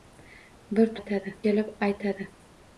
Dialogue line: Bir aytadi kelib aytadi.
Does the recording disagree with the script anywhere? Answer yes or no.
no